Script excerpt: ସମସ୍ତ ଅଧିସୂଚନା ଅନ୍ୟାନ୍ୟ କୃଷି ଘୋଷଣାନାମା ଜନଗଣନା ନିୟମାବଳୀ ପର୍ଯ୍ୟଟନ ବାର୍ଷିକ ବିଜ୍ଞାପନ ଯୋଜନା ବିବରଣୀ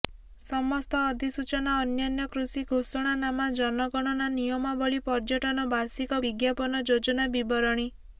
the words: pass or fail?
pass